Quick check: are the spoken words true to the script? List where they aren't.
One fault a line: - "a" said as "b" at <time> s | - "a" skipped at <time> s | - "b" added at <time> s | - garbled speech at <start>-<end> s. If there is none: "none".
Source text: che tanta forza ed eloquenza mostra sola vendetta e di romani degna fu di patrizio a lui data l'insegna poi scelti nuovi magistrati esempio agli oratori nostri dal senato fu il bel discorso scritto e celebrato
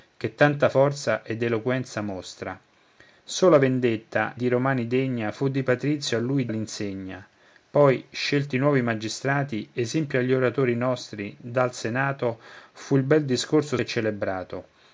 - "e" skipped at 4.4 s
- "data" skipped at 6.5 s
- "scritto" skipped at 13.8 s